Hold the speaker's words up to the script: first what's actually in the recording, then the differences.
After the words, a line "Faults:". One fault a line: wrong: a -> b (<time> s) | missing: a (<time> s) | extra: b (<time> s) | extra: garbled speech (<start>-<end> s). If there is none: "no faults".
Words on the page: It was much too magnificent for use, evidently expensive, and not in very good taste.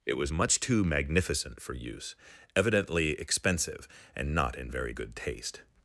It was much too magnificent for use, evidently expensive, and not in very good taste.
Faults:
no faults